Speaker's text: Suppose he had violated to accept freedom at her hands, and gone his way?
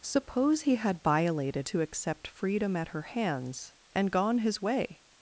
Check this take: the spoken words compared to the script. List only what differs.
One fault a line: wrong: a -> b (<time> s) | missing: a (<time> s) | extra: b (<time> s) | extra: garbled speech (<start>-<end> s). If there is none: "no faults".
no faults